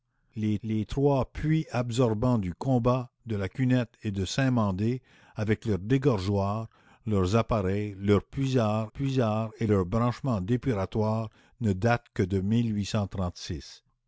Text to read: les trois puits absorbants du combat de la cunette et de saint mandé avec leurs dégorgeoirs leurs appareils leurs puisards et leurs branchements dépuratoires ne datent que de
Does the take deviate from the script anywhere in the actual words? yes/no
yes